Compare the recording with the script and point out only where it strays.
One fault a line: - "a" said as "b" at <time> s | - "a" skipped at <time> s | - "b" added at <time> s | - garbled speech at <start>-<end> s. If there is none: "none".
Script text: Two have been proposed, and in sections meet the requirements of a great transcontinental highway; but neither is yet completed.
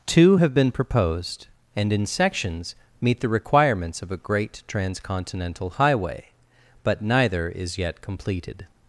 none